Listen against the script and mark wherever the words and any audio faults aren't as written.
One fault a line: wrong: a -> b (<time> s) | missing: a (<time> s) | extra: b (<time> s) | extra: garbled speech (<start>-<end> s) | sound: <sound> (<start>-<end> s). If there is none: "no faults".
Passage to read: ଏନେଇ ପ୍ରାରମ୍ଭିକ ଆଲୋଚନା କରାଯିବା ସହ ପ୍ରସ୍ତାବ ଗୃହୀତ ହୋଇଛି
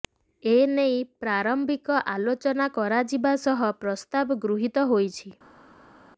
no faults